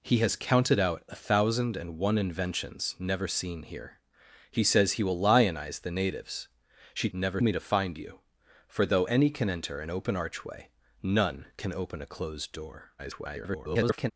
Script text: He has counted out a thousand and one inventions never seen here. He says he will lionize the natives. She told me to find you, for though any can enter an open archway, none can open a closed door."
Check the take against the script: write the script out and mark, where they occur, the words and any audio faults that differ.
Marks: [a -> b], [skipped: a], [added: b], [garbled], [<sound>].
He has counted out a thousand and one inventions never seen here. He says he will lionize the natives. She [told -> never] me to find you, for though any can enter an open archway, none can open a closed door." [garbled]